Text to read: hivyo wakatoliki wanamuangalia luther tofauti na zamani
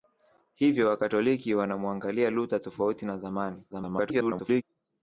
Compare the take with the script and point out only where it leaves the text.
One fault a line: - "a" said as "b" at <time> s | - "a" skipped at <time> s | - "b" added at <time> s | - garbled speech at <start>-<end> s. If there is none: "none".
- garbled speech at 3.7-4.6 s